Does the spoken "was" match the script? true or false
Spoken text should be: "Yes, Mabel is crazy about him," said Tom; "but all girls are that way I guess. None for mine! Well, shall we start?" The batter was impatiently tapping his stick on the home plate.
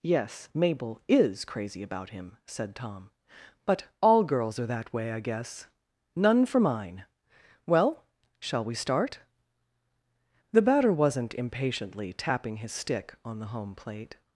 false